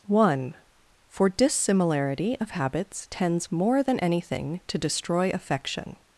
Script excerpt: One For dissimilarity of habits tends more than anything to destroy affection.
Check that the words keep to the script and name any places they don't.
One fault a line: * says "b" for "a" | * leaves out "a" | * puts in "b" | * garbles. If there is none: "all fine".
all fine